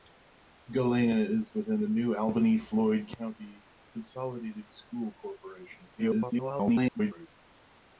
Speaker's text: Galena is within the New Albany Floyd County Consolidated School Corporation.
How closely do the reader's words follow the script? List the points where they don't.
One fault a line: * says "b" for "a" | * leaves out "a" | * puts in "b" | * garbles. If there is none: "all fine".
* garbles